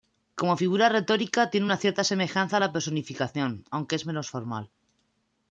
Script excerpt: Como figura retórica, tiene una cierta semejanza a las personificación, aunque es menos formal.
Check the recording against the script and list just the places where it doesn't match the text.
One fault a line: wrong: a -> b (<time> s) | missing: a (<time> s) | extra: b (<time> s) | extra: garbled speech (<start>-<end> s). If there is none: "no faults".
wrong: las -> la (2.6 s)